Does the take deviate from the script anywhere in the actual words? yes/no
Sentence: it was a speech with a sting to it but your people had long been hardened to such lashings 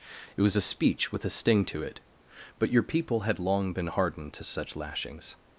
no